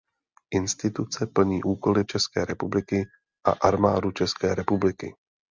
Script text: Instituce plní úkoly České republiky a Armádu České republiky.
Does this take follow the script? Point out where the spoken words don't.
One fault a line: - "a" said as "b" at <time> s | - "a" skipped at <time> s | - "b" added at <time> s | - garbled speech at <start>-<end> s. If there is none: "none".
none